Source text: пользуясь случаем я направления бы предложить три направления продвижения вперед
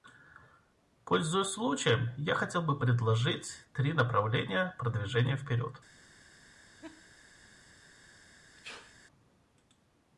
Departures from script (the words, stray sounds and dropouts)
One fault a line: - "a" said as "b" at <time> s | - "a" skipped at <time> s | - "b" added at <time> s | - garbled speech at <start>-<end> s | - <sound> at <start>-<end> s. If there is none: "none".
- "направления" said as "хотел" at 2.3 s
- laugh at 6.8-7.1 s
- sneeze at 8.6-9.0 s